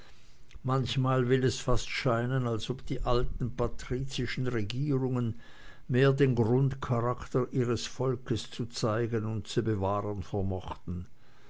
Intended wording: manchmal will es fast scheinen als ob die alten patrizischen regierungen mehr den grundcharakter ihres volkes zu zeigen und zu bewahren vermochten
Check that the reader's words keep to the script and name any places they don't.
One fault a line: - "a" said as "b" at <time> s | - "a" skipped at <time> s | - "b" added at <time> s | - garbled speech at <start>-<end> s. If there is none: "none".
none